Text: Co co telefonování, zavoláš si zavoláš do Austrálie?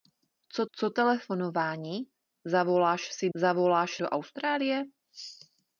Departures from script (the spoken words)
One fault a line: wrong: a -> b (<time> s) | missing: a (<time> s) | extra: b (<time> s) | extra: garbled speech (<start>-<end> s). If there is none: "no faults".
no faults